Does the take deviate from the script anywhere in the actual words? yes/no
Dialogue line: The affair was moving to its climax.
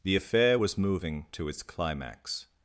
no